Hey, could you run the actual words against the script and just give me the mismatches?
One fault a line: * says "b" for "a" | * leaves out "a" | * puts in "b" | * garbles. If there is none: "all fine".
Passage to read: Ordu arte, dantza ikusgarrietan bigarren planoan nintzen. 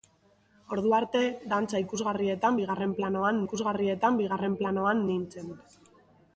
* puts in "ikusgarrietan bigarren planoan"